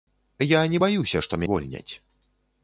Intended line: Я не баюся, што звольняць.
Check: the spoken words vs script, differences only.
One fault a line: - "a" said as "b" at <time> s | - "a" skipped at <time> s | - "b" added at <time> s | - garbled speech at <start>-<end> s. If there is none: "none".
none